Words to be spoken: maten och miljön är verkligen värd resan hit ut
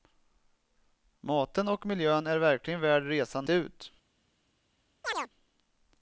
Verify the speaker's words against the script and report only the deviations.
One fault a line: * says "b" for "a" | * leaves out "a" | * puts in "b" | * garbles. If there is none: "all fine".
* leaves out "hit"